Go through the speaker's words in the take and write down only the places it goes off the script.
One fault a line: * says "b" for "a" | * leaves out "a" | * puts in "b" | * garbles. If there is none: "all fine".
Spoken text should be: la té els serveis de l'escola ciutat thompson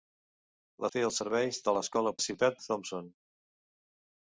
all fine